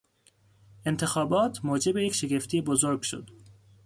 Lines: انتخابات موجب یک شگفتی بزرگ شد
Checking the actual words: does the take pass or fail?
pass